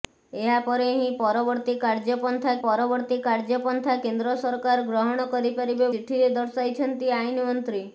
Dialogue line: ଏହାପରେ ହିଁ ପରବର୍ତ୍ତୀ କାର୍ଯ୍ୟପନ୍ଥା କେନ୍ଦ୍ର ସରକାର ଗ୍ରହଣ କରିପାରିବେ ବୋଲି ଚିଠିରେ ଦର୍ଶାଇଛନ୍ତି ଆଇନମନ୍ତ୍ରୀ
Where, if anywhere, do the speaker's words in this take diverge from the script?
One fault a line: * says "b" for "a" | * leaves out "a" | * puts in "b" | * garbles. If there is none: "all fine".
* puts in "ପରବର୍ତ୍ତୀ କାର୍ଯ୍ୟପନ୍ଥା"
* leaves out "ବୋଲି"